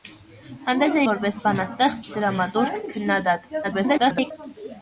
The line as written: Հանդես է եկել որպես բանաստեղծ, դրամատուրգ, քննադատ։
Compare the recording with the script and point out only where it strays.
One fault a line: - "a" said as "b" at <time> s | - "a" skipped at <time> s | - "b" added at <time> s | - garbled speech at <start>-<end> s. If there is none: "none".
- "եկել" skipped at 1.0 s
- garbled speech at 3.6-4.3 s